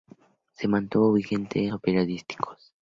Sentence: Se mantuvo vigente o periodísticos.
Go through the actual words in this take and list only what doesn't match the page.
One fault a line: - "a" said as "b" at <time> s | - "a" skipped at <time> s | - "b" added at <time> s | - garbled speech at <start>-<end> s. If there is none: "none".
none